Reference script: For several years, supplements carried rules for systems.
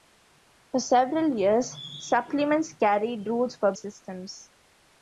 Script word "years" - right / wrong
right